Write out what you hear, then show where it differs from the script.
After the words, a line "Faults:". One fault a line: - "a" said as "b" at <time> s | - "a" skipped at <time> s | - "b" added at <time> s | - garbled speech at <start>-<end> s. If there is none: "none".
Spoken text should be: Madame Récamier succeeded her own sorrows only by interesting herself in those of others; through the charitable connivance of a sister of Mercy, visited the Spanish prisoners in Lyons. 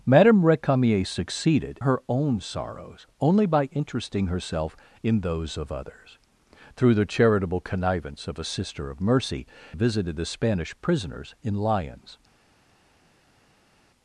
Madame Récamier succeeded her own sorrows only by interesting herself in those of others; through the charitable connivance of a sister of Mercy, visited the Spanish prisoners in Lyons.
Faults:
none